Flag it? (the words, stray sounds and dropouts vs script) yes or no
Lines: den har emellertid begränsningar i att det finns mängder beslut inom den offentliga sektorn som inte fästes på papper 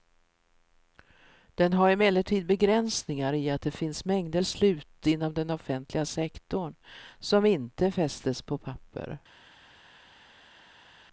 no